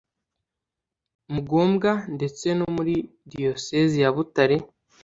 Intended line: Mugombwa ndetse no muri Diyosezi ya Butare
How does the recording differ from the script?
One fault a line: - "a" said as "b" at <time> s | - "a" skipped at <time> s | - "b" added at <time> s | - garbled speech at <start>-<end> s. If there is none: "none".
none